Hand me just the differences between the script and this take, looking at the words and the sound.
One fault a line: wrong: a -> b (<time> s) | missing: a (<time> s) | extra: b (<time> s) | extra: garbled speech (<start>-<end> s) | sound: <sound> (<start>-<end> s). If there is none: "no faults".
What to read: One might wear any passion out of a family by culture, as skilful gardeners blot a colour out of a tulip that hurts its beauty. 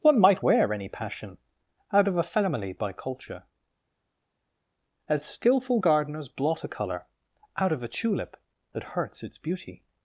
no faults